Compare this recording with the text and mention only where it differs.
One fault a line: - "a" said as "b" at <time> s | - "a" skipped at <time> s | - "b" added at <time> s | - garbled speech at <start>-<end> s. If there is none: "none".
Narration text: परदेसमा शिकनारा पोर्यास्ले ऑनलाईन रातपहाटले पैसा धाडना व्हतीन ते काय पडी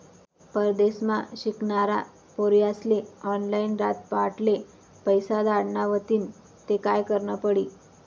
- "करनं" added at 7.1 s